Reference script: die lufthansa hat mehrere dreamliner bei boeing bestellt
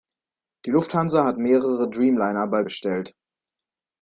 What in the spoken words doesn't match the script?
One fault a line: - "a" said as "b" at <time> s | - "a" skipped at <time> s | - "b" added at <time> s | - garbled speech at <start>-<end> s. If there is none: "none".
- "boeing" skipped at 2.6 s